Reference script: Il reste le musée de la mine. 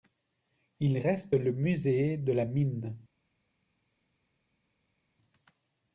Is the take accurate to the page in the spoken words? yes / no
yes